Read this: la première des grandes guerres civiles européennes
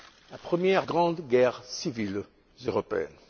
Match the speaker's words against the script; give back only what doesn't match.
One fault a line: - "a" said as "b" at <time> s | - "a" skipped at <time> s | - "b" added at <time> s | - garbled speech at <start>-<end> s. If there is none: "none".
- "des" skipped at 0.8 s